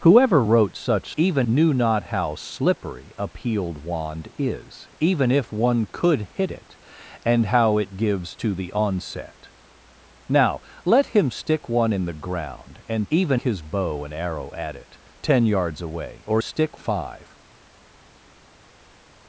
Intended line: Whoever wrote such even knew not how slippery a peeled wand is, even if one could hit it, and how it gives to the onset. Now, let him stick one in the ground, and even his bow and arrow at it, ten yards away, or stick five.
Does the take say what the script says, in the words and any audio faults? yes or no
yes